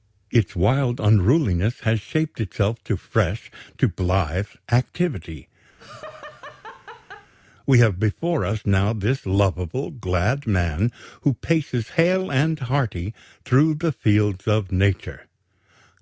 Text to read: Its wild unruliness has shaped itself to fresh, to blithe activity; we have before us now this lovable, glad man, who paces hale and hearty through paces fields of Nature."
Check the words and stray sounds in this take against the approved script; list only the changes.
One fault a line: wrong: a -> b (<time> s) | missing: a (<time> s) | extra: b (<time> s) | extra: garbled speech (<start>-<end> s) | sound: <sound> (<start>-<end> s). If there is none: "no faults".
sound: laugh (5.8-7.3 s)
wrong: paces -> the (13.7 s)